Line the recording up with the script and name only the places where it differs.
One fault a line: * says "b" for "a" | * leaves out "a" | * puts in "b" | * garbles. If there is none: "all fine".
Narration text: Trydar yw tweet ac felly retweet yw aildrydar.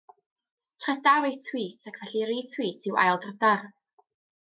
all fine